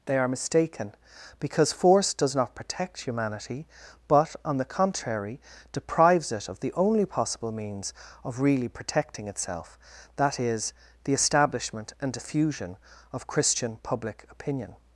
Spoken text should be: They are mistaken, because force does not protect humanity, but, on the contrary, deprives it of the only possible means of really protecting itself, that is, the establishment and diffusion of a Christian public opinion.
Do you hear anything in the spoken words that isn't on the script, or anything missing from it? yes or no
yes